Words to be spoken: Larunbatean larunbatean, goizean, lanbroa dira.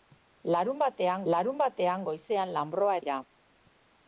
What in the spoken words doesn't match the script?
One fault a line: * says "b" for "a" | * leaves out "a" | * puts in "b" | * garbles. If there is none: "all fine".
all fine